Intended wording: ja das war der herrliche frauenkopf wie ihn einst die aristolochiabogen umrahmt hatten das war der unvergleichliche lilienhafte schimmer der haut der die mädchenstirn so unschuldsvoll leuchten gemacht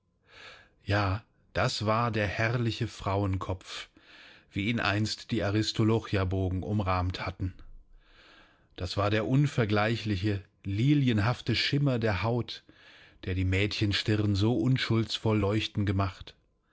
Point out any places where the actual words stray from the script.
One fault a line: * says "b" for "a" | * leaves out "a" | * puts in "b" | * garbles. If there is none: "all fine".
all fine